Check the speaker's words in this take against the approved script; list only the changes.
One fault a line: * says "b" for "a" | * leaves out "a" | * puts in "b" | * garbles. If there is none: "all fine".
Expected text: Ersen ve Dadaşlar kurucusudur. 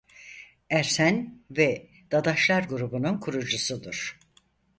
* puts in "grubunun"